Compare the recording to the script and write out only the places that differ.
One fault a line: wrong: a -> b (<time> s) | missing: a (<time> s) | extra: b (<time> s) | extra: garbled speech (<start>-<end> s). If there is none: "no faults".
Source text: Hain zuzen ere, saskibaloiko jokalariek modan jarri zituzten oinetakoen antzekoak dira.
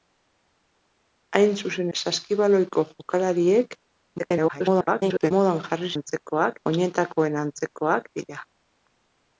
missing: ere (1.9 s)
extra: garbled speech (4.2-5.3 s)
wrong: zituzten -> antzekoak (6.0 s)